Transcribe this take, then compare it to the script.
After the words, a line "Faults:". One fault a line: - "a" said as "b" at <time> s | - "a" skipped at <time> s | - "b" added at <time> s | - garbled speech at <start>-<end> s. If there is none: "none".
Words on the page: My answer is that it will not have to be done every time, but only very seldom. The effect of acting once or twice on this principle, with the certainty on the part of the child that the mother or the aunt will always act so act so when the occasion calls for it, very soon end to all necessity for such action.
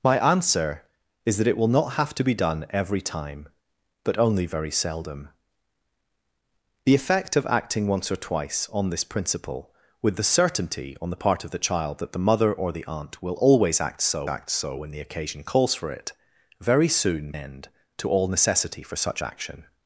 My answer is that it will not have to be done every time, but only very seldom. The effect of acting once or twice on this principle, with the certainty on the part of the child that the mother or the aunt will always act so act so when the occasion calls for it, very soon end to all necessity for such action.
Faults:
none